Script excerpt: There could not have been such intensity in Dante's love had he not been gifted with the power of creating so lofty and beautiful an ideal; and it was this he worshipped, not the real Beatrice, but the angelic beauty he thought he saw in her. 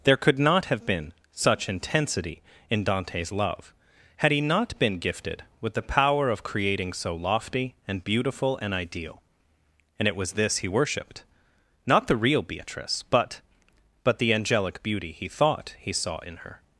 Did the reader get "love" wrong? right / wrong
right